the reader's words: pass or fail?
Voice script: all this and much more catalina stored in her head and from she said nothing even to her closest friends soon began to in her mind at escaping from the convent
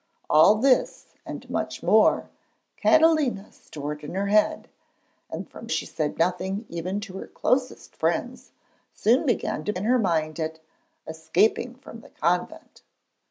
pass